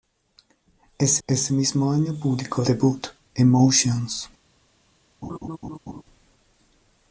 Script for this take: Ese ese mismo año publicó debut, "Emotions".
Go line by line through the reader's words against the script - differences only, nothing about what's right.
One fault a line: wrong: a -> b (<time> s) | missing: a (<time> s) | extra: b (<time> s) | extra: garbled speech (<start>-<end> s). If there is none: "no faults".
no faults